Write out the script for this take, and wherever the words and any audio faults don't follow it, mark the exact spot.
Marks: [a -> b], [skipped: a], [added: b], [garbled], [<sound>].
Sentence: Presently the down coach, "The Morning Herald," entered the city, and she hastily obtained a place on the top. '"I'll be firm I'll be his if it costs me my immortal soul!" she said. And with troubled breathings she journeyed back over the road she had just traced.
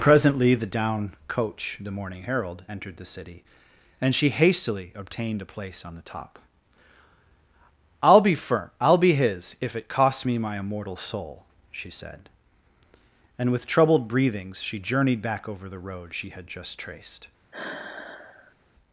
Presently the down coach, "The Morning Herald," entered the city, and she hastily obtained a place on the top. '"I'll be firm I'll be his if it costs me my immortal soul!" she said. And with troubled breathings she journeyed back over the road she had just traced. [sigh]